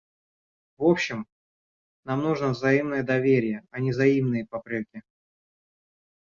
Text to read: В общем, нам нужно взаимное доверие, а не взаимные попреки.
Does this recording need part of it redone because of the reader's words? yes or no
no